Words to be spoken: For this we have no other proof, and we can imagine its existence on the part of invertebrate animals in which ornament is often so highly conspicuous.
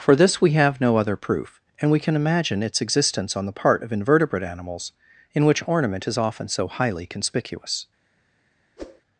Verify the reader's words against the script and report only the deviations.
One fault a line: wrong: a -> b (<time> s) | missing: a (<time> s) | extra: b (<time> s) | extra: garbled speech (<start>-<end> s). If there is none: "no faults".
no faults